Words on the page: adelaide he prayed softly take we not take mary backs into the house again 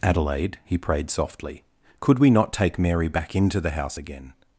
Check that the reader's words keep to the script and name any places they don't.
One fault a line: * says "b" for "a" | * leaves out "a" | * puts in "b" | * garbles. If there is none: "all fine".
* says "could" for "take"
* says "back" for "backs"